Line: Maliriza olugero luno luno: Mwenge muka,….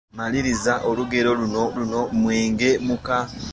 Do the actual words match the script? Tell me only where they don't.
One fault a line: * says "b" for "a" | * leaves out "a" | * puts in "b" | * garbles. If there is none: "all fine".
all fine